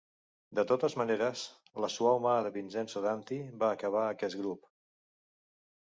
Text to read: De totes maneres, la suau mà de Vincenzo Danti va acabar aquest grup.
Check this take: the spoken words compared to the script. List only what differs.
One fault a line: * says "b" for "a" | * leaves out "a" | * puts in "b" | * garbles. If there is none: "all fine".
all fine